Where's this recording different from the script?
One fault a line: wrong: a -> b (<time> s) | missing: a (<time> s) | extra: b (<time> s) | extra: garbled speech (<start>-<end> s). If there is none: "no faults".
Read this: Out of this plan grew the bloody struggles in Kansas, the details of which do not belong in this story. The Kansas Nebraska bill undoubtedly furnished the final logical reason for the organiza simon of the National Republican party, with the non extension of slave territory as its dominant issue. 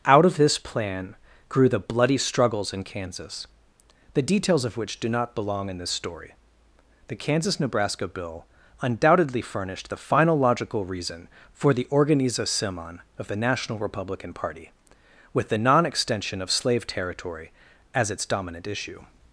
no faults